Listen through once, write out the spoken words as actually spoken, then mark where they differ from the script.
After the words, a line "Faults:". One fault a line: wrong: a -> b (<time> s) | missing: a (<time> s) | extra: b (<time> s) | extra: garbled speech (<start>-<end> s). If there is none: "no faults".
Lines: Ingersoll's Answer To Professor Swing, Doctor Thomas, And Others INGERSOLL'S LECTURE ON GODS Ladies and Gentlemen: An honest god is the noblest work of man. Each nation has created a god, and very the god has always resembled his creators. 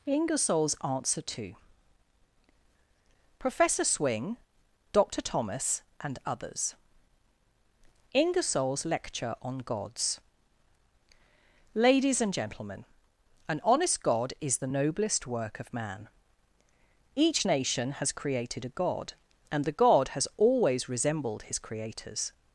Ingersoll's Answer To Professor Swing, Doctor Thomas, And Others INGERSOLL'S LECTURE ON GODS Ladies and Gentlemen: An honest god is the noblest work of man. Each nation has created a god, and the god has always resembled his creators.
Faults:
missing: very (19.6 s)